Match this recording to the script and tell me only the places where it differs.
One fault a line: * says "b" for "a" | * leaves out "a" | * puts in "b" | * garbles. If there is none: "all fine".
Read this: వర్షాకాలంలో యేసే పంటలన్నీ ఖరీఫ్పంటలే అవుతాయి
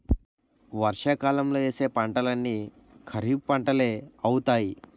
all fine